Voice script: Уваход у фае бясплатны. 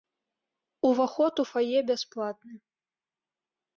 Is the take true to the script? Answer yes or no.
yes